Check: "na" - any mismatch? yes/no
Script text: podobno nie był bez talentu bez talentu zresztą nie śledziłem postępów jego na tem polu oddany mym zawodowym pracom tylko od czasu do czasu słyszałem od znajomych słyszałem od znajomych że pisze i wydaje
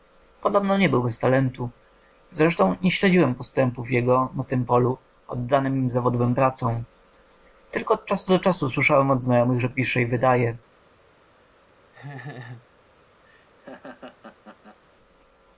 no